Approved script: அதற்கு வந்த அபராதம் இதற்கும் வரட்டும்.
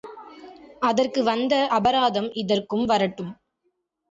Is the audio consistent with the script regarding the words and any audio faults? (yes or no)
yes